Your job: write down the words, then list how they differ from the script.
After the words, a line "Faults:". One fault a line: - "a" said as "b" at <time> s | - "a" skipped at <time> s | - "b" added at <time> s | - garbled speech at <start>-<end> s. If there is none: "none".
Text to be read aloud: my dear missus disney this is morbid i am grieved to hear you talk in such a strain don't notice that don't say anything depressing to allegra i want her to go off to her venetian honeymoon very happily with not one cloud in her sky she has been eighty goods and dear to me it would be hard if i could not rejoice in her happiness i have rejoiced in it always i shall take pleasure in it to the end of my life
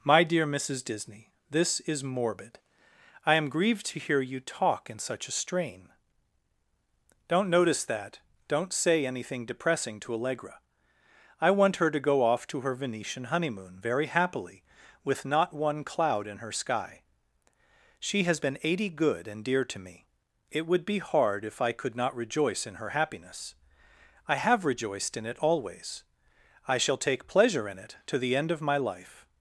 my dear missus disney this is morbid i am grieved to hear you talk in such a strain don't notice that don't say anything depressing to allegra i want her to go off to her venetian honeymoon very happily with not one cloud in her sky she has been eighty good and dear to me it would be hard if i could not rejoice in her happiness i have rejoiced in it always i shall take pleasure in it to the end of my life
Faults:
- "goods" said as "good" at 18.9 s